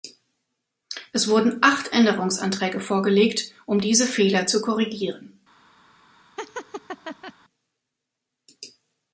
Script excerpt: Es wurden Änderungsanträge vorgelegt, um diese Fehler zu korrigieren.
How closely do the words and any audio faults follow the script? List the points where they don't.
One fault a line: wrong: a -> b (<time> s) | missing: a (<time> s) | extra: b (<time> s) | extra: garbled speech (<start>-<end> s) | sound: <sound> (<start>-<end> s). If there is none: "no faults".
extra: acht (1.6 s)
sound: laugh (6.4-7.3 s)